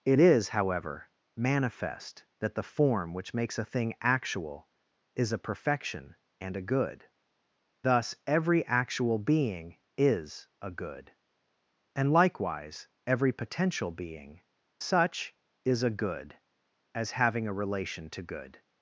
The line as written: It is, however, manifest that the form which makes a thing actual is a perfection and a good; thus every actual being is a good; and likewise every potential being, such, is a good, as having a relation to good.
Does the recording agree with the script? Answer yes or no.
yes